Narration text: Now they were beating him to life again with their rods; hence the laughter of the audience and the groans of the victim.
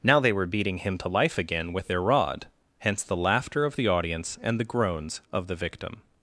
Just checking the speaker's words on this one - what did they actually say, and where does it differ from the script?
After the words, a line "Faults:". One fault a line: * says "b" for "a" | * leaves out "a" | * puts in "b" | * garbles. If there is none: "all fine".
Now they were beating him to life again with their rod; hence the laughter of the audience and the groans of the victim.
Faults:
* says "rod" for "rods"